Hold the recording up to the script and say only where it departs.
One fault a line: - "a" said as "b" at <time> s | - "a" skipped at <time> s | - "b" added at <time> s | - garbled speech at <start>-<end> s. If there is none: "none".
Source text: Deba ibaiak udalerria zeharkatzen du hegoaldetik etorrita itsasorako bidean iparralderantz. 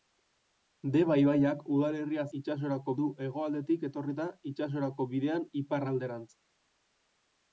- "zeharkatzen" said as "itsasorako" at 2.4 s